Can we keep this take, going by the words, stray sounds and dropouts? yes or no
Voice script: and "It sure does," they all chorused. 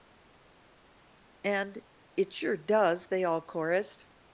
yes